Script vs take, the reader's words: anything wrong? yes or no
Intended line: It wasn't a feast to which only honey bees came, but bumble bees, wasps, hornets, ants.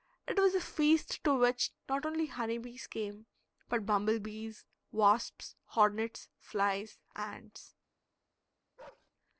yes